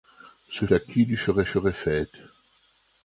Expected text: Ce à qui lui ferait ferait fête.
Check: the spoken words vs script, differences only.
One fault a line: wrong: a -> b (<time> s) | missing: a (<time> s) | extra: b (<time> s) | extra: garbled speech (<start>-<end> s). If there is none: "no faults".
no faults